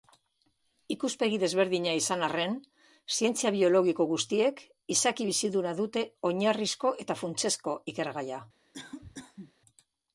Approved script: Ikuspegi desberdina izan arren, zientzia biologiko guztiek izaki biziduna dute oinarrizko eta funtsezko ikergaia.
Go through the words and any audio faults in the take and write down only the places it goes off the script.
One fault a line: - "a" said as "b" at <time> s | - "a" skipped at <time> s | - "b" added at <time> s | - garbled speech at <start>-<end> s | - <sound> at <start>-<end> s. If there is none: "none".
- cough at 8.7-9.5 s